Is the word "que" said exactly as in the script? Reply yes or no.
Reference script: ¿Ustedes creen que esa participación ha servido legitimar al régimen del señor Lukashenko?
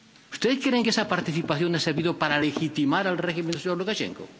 yes